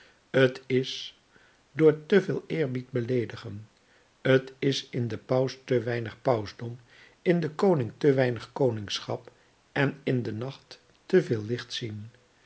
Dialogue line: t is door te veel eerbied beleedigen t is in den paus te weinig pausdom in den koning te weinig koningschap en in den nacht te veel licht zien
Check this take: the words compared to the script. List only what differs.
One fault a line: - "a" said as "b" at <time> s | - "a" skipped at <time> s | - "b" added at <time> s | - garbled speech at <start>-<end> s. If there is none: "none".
none